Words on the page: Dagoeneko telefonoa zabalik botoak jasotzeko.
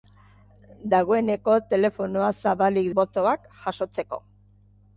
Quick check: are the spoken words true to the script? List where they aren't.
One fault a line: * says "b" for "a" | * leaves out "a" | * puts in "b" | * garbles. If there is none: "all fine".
all fine